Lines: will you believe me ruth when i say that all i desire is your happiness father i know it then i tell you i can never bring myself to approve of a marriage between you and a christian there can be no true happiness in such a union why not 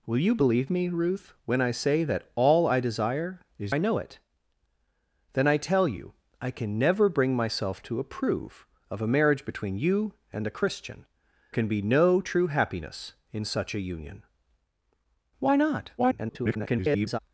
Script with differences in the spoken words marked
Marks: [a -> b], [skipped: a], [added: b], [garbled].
will you believe me ruth when i say that all i desire is [skipped: your happiness father] i know it then i tell you i can never bring myself to approve of a marriage between you and a christian [skipped: there] can be no true happiness in such a union why not [garbled]